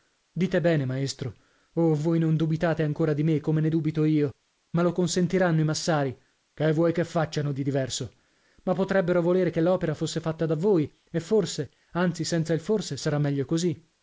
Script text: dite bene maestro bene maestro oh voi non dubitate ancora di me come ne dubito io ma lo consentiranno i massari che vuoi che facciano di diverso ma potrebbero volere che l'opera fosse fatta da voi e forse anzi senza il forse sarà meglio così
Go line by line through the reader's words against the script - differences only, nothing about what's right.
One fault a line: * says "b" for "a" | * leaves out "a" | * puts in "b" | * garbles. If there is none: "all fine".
* leaves out "bene maestro"